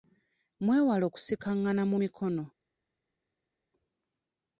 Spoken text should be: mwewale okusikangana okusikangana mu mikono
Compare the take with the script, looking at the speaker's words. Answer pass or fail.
fail